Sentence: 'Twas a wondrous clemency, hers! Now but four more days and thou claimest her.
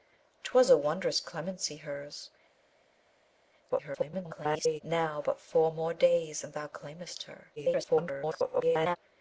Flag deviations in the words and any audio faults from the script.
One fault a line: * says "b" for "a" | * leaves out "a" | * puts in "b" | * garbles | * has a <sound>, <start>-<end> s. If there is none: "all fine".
* garbles
* garbles